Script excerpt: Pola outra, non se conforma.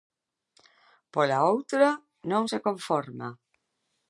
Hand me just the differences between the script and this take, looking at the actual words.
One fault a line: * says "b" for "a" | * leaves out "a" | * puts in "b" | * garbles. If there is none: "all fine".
all fine